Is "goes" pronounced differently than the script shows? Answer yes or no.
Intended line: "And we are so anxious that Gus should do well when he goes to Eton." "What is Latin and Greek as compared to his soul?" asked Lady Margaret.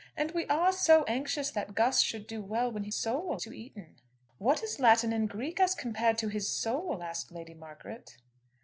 yes